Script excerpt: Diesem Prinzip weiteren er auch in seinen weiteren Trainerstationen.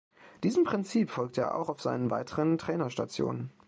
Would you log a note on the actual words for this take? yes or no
yes